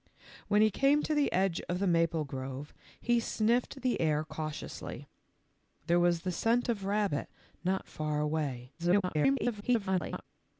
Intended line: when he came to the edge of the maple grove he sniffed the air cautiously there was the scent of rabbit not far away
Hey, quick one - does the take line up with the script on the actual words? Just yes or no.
no